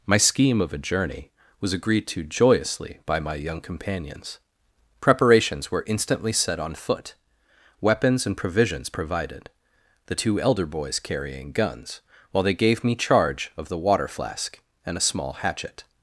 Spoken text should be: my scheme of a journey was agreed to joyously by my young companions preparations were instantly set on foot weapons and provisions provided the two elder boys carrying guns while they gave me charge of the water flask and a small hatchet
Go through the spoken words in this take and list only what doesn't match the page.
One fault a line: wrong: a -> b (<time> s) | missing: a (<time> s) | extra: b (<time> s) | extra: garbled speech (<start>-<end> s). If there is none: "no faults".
no faults